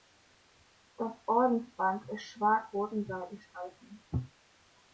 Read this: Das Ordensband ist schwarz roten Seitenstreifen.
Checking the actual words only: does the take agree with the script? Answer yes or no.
yes